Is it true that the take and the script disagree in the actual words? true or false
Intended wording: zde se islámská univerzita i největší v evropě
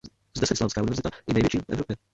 false